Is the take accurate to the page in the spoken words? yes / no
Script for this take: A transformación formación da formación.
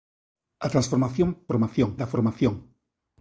yes